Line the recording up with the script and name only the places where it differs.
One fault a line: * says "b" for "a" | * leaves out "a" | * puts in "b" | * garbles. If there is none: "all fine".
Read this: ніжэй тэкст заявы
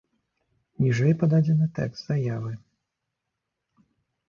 * puts in "пададзены"